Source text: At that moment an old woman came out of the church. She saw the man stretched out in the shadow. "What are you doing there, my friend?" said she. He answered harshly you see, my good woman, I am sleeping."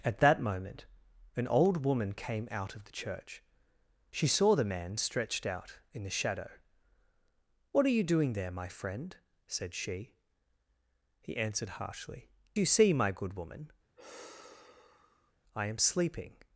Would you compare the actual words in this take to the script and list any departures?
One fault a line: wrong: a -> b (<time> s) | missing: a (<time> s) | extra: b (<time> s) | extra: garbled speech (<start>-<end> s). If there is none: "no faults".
no faults